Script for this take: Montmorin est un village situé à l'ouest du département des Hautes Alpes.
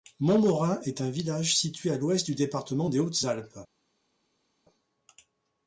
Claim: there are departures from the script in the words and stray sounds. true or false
false